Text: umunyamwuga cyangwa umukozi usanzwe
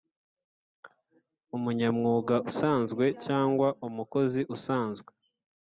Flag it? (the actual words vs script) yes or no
yes